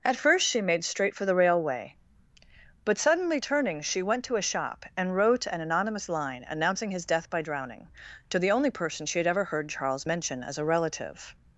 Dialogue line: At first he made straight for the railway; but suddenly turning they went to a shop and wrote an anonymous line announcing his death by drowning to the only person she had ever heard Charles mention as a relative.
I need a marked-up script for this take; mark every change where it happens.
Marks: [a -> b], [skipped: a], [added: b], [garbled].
At first [he -> she] made straight for the railway; but suddenly turning [they -> she] went to a shop and wrote an anonymous line announcing his death by drowning to the only person she had ever heard Charles mention as a relative.